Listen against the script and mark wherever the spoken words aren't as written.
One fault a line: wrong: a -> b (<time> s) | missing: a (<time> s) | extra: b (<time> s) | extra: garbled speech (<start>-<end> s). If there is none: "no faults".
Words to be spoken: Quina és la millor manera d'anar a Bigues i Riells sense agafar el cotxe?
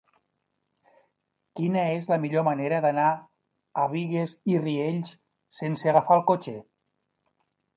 no faults